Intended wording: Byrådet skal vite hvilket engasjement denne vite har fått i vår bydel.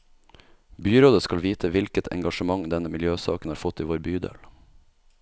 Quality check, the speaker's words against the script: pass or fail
fail